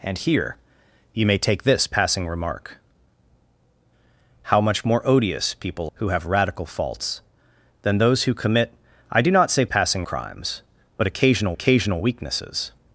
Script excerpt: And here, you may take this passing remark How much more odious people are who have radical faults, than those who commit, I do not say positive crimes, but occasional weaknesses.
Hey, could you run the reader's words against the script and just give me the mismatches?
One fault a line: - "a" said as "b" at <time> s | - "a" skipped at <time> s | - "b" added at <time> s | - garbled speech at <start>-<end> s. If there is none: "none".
- "are" skipped at 5.9 s
- "positive" said as "passing" at 9.7 s
- "occasional" added at 11.5 s